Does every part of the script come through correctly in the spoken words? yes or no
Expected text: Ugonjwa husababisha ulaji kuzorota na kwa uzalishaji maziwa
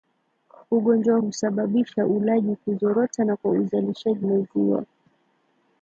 yes